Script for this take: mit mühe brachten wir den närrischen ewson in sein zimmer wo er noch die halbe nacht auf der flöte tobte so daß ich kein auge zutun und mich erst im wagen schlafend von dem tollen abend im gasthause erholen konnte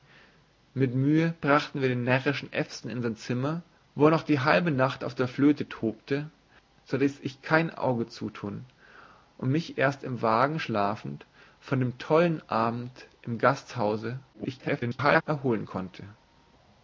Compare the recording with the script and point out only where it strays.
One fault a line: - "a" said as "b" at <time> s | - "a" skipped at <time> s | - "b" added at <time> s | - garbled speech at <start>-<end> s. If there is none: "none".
- garbled speech at 14.3-15.2 s